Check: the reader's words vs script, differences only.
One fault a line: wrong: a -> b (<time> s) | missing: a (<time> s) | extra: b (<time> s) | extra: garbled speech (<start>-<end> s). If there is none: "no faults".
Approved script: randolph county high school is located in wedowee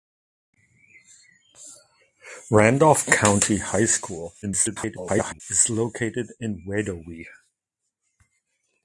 extra: garbled speech (4.4-5.4 s)